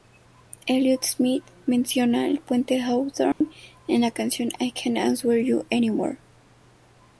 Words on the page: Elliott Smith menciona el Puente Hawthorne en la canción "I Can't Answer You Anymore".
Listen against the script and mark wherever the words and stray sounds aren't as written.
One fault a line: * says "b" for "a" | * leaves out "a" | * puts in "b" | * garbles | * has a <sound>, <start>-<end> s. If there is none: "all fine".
* has a dropout, 3.3-3.4 s